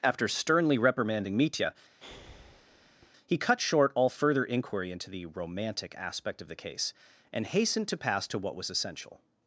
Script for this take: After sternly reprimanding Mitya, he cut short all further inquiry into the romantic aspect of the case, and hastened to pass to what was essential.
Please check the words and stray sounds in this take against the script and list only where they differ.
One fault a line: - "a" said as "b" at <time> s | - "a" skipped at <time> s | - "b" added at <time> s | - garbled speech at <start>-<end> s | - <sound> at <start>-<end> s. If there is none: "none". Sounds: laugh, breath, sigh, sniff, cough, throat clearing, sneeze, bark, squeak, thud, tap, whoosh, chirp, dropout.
- breath at 2.0-3.1 s